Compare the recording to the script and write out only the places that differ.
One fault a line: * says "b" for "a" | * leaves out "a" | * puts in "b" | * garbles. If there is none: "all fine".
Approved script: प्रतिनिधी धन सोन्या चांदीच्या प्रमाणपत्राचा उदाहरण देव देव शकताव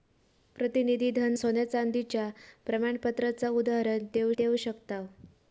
all fine